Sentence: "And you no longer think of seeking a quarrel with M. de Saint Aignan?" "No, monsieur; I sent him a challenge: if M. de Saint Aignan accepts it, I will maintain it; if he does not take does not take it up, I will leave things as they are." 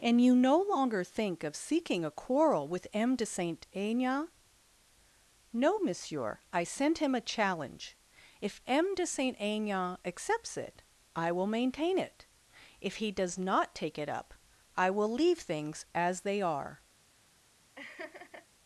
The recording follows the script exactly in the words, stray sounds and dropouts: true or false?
false